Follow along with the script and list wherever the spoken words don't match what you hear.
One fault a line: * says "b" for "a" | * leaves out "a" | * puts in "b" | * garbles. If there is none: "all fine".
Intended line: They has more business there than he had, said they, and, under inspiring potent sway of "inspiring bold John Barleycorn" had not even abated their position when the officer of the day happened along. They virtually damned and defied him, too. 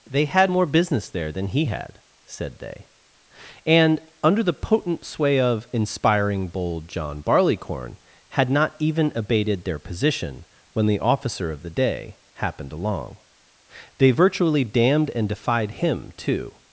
* says "had" for "has"
* says "the" for "inspiring"